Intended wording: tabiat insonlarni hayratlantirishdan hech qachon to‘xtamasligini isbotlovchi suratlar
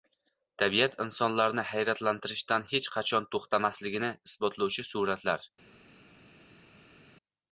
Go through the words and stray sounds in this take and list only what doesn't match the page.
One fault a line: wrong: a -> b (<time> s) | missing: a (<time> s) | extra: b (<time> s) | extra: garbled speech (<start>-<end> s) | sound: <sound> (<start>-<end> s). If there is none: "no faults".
no faults